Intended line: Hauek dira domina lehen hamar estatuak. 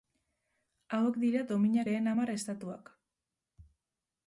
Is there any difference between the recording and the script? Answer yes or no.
no